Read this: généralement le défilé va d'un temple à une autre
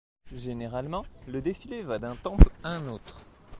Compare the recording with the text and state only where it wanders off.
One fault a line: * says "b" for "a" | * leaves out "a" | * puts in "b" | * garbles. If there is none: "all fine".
* says "un" for "une"